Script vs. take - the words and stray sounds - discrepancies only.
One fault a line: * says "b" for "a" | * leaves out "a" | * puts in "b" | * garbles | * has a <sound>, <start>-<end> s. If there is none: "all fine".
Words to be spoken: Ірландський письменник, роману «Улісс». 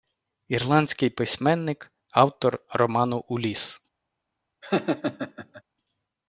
* puts in "автор"
* has a laugh, 4.6-5.6 s